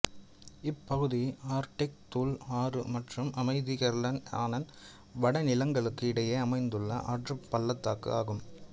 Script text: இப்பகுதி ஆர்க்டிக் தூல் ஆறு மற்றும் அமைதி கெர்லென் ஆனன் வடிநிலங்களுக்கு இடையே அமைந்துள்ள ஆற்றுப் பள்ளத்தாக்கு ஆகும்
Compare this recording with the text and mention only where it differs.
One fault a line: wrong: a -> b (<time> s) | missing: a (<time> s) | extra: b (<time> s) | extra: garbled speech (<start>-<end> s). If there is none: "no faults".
no faults